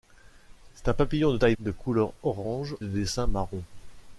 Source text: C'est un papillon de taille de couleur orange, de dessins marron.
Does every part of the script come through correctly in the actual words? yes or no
yes